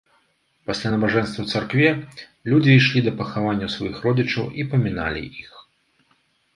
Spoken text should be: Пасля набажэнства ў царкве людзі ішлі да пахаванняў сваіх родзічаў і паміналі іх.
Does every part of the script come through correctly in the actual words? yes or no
yes